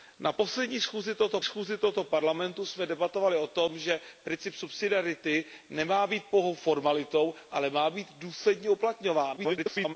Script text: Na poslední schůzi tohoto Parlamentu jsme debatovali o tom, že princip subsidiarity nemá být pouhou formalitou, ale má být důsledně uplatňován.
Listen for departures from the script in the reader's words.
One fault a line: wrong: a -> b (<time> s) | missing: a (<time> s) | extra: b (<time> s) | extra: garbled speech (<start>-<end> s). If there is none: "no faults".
extra: schůzi tohoto (1.4 s)
extra: garbled speech (9.4-9.9 s)